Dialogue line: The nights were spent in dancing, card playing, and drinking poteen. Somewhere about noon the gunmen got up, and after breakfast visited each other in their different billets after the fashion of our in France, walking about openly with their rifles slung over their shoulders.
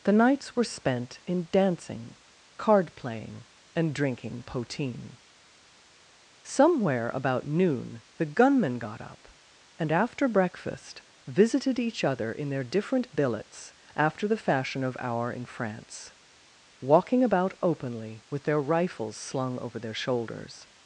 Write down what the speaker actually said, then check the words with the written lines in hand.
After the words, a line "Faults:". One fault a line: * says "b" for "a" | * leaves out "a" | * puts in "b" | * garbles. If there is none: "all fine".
The nights were spent in dancing, card playing, and drinking poteen. Somewhere about noon the gunmen got up, and after breakfast visited each other in their different billets after the fashion of our in France, walking about openly with their rifles slung over their shoulders.
Faults:
all fine